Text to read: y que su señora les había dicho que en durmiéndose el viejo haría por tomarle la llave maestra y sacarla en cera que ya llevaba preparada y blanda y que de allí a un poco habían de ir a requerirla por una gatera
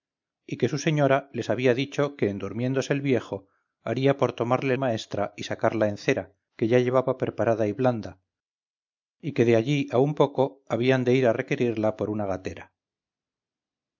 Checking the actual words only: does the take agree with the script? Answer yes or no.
no